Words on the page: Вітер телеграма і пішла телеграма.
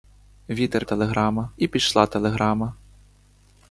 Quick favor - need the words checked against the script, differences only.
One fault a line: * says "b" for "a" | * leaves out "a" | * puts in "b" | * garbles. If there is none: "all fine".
all fine